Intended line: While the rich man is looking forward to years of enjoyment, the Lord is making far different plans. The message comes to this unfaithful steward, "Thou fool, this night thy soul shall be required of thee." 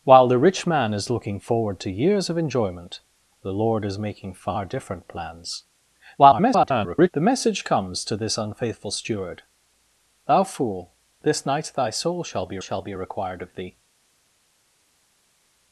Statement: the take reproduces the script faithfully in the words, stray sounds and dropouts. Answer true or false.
false